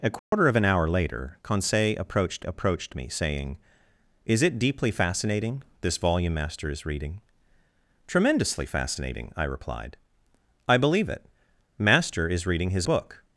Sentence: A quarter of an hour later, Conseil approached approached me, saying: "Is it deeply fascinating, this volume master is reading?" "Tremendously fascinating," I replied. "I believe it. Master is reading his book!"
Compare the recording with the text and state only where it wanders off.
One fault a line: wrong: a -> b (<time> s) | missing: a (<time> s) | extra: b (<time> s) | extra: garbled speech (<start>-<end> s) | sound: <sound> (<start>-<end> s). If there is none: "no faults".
sound: dropout (0.2-0.3 s)